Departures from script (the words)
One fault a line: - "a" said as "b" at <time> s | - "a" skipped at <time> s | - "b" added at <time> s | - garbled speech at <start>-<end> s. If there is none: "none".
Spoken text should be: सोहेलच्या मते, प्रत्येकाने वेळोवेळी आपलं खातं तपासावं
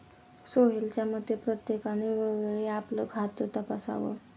none